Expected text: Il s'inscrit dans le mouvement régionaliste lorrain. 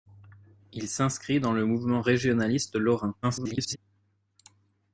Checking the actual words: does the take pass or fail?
fail